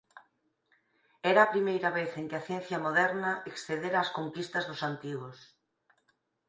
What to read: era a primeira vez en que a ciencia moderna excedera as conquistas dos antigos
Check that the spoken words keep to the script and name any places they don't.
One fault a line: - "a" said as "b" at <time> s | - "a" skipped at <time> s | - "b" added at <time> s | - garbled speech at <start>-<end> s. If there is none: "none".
none